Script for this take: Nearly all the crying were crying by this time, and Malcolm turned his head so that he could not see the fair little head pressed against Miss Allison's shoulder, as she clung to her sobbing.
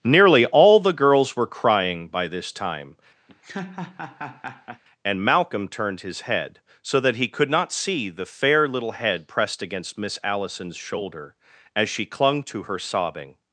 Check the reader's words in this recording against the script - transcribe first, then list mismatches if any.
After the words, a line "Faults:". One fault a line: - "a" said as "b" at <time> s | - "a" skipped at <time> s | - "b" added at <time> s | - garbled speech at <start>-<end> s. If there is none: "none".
Nearly all the girls were crying by this time, and Malcolm turned his head so that he could not see the fair little head pressed against Miss Allison's shoulder, as she clung to her sobbing.
Faults:
- "crying" said as "girls" at 0.9 s